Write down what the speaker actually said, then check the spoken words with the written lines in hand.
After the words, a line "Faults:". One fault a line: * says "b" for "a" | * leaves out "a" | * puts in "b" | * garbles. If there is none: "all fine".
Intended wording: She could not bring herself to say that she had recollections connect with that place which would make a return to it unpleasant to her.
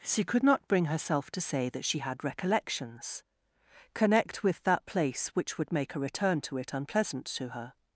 She could not bring herself to say that she had recollections connect with that place which would make a return to it unpleasant to her.
Faults:
all fine